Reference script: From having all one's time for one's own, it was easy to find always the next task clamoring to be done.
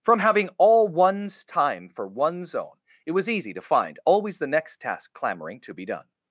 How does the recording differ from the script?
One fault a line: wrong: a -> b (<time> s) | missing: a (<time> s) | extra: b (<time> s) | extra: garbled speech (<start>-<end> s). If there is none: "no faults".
no faults